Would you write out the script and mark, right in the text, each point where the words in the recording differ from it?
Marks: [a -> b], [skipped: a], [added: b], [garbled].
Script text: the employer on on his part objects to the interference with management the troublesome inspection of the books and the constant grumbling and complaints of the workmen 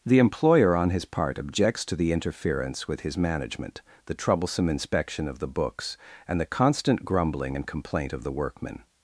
the employer on [skipped: on] his part objects to the interference with [added: his] management the troublesome inspection of the books and the constant grumbling and [complaints -> complaint] of the workmen